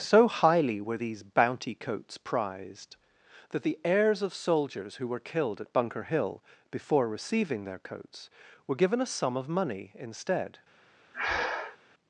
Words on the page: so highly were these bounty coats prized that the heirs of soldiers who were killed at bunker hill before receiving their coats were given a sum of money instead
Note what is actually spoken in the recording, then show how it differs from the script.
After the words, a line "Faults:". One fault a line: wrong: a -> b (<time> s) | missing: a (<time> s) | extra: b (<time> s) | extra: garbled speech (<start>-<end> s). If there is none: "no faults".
so highly were these bounty coats prized that the heirs of soldiers who were killed at bunker hill before receiving their coats were given a sum of money instead
Faults:
no faults